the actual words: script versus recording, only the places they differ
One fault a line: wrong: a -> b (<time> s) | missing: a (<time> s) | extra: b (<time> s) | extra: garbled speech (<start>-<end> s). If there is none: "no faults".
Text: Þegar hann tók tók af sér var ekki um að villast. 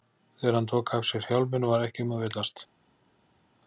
missing: tók (0.9 s)
extra: hjálminn (1.3 s)